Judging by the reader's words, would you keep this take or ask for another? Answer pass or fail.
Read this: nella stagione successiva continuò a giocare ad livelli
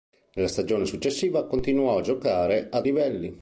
pass